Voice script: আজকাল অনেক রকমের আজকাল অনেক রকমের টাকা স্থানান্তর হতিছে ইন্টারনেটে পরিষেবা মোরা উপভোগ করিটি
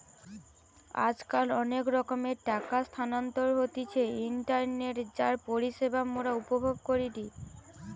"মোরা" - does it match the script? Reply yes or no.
yes